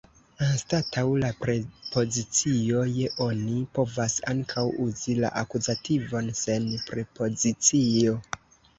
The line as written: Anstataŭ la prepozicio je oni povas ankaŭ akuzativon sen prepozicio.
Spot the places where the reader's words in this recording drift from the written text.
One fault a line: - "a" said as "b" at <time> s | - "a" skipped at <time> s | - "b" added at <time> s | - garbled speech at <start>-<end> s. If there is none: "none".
- "uzi la" added at 4.9 s